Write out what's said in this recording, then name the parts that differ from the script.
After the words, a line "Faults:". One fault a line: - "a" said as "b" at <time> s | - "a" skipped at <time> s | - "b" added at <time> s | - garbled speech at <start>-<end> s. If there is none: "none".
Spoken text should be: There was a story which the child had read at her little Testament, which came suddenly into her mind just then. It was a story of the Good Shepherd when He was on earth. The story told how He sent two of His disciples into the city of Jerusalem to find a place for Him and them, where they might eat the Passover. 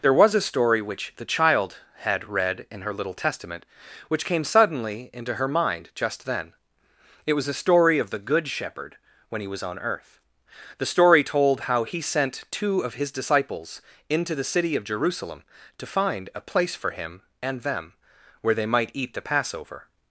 There was a story which the child had read in her little Testament, which came suddenly into her mind just then. It was a story of the Good Shepherd when He was on earth. The story told how He sent two of His disciples into the city of Jerusalem to find a place for Him and them, where they might eat the Passover.
Faults:
- "at" said as "in" at 2.7 s